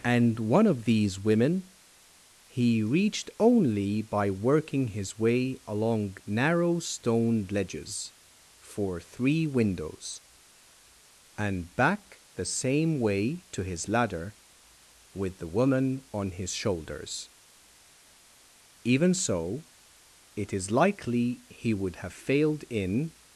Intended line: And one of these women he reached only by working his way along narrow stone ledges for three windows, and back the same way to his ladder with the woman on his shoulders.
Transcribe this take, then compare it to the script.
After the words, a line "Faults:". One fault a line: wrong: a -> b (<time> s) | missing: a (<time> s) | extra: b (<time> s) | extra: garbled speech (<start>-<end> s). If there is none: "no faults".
And one of these women he reached only by working his way along narrow stone ledges for three windows, and back the same way to his ladder with the woman on his shoulders. Even so it is likely he would have failed in
Faults:
extra: Even so it is likely he would have failed in (18.8 s)